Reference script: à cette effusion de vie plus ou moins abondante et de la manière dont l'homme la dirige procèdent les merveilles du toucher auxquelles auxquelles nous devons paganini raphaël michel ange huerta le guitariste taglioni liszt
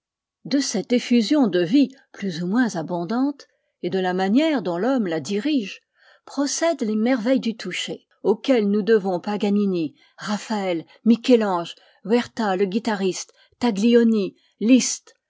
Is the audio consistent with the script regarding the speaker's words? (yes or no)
no